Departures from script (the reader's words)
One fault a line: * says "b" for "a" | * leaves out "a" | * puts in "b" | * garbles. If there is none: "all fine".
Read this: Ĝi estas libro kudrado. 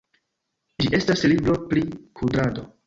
* puts in "pri"